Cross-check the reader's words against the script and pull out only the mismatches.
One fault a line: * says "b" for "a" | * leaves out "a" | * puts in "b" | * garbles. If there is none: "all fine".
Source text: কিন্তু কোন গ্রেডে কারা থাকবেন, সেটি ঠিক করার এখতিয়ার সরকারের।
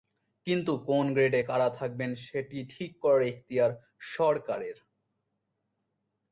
all fine